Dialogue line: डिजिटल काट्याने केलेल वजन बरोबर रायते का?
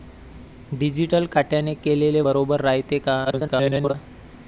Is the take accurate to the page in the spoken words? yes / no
no